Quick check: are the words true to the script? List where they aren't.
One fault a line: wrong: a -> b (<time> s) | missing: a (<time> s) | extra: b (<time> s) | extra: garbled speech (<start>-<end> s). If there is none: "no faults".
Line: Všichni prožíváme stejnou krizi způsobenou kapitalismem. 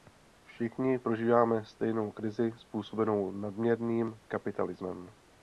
extra: nadměrným (3.3 s)